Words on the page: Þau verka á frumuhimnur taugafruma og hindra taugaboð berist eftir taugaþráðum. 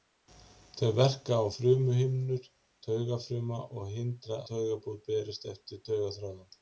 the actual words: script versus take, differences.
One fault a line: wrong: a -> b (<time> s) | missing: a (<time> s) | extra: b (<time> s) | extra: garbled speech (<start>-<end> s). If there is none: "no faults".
no faults